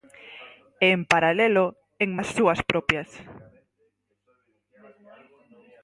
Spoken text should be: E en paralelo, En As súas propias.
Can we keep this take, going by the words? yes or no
yes